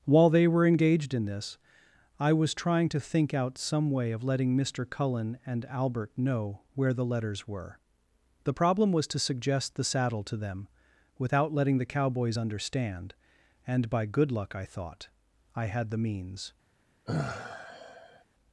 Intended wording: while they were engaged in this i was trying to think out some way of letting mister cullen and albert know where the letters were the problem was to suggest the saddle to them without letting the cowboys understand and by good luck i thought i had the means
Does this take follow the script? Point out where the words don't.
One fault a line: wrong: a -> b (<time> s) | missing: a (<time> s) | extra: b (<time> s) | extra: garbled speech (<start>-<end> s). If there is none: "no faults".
no faults